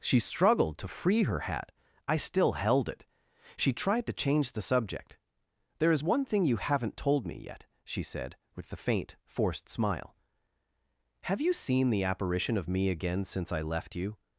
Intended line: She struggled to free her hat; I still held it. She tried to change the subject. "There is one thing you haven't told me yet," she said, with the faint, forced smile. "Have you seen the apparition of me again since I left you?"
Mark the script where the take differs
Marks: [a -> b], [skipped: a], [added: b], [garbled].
She struggled to free her hat; I still held it. She tried to change the subject. "There is one thing you haven't told me yet," she said, with the faint, forced smile. "Have you seen the apparition of me again since I left you?"